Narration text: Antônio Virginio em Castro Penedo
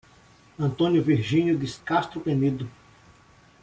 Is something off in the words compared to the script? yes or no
yes